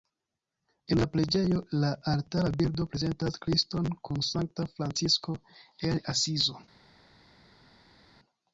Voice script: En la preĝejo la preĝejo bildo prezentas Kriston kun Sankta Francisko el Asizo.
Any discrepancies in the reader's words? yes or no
yes